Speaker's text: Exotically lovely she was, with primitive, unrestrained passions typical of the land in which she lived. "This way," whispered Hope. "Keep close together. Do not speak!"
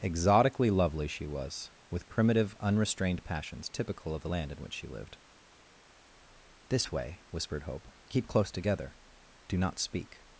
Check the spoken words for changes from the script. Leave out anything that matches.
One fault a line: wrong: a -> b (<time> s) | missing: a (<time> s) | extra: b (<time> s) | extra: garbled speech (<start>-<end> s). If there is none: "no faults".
no faults